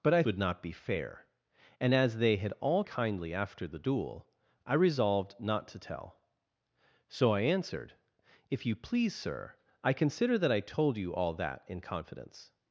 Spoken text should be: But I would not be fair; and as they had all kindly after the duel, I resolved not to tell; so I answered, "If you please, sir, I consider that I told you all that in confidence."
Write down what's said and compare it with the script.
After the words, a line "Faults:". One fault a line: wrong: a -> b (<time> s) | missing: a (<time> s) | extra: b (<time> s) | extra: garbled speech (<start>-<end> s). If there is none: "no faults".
But I would not be fair; and as they had all kindly after the duel, I resolved not to tell; so I answered, "If you please, sir, I consider that I told you all that in confidence."
Faults:
no faults